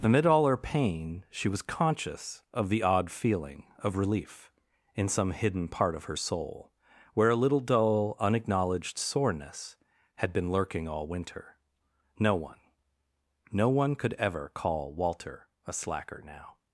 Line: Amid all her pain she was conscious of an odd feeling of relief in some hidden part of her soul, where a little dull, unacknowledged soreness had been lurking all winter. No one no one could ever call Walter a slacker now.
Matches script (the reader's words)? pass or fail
fail